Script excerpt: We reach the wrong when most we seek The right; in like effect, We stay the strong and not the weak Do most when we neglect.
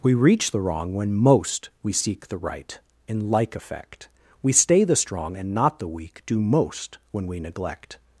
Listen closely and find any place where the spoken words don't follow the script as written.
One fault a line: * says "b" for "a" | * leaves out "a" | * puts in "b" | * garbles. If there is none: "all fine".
all fine